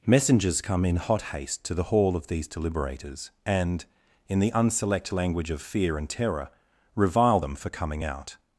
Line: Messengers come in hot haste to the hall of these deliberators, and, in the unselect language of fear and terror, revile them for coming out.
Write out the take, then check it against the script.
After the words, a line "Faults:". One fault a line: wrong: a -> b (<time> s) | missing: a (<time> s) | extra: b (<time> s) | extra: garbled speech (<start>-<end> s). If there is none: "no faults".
Messengers come in hot haste to the hall of these deliberators, and, in the unselect language of fear and terror, revile them for coming out.
Faults:
no faults